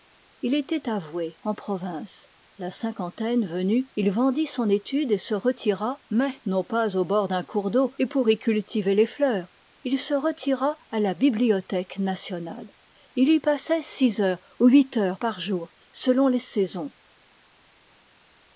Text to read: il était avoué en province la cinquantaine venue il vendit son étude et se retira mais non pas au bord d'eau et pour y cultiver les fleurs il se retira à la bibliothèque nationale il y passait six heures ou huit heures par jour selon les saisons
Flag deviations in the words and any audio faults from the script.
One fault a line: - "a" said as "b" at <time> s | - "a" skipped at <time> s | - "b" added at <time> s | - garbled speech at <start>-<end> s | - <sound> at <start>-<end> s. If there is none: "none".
- "d'un cours" added at 7.3 s